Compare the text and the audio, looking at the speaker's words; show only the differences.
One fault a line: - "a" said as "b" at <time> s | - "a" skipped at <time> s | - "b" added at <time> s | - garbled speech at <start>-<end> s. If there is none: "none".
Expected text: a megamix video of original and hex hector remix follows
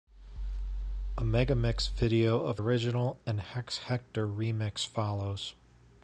none